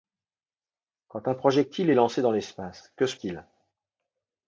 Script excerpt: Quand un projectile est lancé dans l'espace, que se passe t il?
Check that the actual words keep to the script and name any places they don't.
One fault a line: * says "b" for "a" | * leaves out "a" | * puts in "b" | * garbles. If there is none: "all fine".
* leaves out "passe"